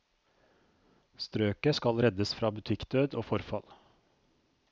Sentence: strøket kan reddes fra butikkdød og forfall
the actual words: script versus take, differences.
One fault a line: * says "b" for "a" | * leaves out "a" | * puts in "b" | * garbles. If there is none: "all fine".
* says "skal" for "kan"